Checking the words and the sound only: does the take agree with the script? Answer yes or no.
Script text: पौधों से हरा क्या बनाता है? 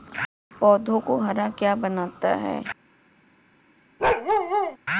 no